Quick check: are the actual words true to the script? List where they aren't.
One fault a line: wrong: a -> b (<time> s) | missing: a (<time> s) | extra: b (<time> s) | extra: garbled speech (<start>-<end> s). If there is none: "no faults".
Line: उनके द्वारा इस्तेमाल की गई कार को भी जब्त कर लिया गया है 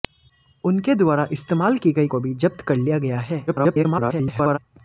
missing: कार (2.1 s)
extra: garbled speech (3.5-4.6 s)